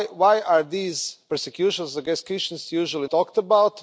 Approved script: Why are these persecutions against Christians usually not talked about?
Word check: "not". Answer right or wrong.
wrong